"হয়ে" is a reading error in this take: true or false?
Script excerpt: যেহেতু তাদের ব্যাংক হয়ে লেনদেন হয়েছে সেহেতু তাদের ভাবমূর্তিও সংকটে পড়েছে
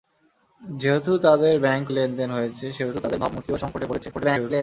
true